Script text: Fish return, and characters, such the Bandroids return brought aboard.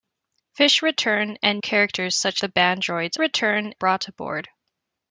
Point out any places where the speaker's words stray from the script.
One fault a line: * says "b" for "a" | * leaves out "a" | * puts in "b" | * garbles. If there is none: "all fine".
all fine